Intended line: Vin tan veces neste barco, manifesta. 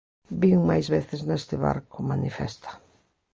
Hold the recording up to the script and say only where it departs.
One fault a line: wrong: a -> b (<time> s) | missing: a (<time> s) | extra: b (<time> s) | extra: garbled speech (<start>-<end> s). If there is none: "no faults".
wrong: tan -> máis (0.7 s)